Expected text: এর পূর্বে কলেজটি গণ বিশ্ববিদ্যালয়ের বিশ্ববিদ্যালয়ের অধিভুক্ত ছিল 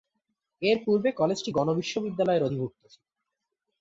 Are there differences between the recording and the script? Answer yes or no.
yes